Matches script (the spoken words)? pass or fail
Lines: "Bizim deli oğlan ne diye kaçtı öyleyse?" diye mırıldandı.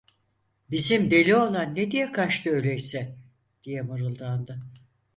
pass